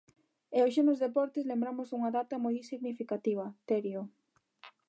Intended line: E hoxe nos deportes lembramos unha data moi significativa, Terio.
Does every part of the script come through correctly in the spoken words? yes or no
yes